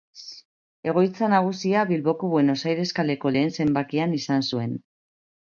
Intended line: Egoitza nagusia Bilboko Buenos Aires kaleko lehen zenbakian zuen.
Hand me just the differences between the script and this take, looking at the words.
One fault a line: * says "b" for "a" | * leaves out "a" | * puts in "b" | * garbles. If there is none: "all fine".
* puts in "izan"